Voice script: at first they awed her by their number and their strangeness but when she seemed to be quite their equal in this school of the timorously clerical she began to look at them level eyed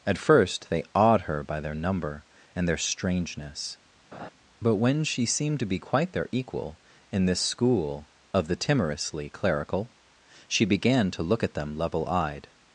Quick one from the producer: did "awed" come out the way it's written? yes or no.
yes